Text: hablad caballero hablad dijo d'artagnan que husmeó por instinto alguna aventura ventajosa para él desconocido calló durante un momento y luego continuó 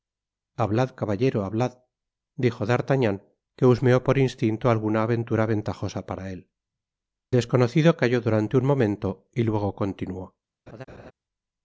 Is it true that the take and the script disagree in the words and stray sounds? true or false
true